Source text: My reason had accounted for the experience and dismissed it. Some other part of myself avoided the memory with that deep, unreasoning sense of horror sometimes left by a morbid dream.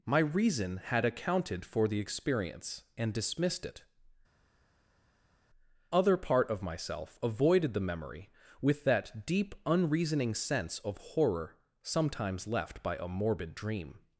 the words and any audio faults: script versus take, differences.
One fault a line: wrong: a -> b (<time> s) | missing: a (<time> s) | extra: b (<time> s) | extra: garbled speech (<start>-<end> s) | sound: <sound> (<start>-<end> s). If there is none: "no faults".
missing: Some (3.9 s)